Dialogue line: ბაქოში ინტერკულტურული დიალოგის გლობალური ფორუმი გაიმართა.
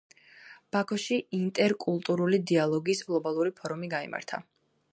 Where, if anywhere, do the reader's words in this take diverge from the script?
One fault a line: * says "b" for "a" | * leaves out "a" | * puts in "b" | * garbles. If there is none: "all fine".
all fine